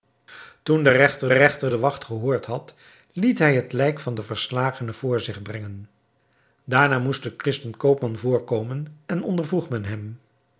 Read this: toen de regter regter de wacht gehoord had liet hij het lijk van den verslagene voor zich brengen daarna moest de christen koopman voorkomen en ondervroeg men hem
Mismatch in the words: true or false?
false